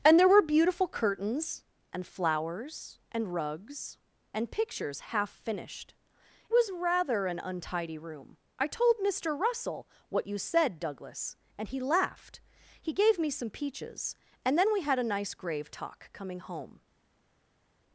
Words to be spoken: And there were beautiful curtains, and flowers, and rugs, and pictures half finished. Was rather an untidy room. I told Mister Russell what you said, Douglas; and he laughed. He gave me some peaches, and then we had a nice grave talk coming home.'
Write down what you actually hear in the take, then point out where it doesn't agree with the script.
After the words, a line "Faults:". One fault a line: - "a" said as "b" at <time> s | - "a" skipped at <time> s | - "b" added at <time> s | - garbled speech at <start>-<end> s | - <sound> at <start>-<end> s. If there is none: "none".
And there were beautiful curtains, and flowers, and rugs, and pictures half finished. Was rather an untidy room. I told Mister Russell what you said, Douglas; and he laughed. He gave me some peaches, and then we had a nice grave talk coming home.'
Faults:
none